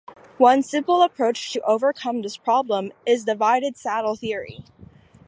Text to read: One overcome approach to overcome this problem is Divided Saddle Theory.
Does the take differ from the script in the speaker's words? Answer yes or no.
yes